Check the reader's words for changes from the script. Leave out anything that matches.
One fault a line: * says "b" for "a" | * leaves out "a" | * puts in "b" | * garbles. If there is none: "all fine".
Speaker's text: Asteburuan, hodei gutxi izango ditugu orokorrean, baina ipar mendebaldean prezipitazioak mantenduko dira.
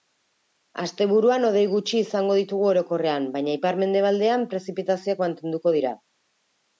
all fine